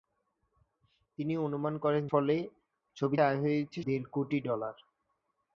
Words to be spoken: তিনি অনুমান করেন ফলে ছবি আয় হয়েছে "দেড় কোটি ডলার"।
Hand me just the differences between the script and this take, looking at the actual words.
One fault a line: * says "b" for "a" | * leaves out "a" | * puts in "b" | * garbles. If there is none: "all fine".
all fine